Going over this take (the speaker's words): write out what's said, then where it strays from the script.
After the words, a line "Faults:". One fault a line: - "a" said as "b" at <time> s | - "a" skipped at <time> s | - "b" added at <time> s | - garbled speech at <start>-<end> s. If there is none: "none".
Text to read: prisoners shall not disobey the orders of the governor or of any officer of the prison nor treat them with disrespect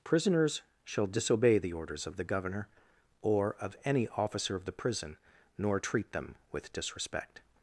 prisoners shall disobey the orders of the governor or of any officer of the prison nor treat them with disrespect
Faults:
- "not" skipped at 1.1 s